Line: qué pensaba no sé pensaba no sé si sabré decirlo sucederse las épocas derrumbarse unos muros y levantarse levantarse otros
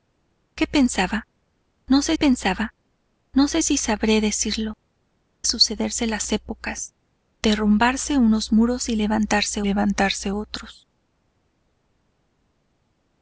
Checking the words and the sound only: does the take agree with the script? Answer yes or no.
yes